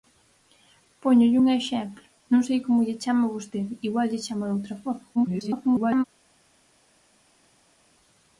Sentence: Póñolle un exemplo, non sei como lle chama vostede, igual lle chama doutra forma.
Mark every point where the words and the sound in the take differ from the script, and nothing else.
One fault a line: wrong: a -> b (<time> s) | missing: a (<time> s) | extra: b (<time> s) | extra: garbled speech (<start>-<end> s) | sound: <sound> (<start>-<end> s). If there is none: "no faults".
extra: garbled speech (5.1-6.0 s)